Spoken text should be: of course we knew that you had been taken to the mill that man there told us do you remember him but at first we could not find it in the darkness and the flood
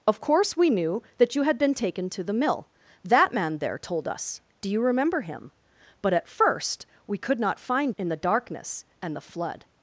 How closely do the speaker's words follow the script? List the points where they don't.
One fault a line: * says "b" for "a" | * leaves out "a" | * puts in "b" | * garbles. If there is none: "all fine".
* leaves out "it"